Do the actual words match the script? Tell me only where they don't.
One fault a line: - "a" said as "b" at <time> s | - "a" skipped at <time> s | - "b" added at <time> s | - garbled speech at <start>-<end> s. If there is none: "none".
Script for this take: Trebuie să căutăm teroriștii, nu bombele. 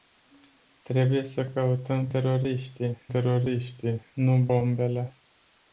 - "teroriștii" added at 3.1 s